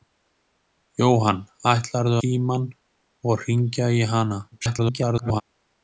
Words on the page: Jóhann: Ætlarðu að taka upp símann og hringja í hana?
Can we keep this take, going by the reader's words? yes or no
no